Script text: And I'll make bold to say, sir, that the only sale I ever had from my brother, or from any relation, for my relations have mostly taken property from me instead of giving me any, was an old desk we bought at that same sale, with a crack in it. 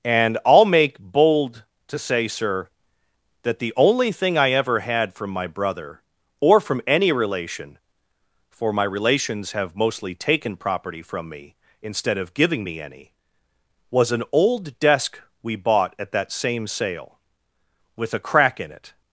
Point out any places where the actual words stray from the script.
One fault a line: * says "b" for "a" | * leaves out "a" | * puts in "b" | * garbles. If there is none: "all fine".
* says "thing" for "sale"